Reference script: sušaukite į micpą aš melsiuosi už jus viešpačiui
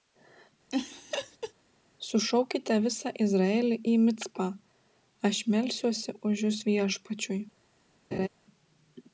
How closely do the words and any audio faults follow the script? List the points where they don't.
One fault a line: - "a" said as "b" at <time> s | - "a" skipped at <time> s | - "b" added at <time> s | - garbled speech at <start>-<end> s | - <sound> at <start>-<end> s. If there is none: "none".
- laugh at 0.7-1.5 s
- "visą izraelį" added at 2.9 s
- laugh at 8.1-8.3 s